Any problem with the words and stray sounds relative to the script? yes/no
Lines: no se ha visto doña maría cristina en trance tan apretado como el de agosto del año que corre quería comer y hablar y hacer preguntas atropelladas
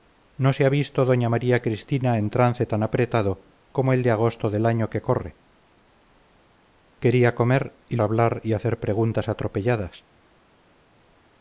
no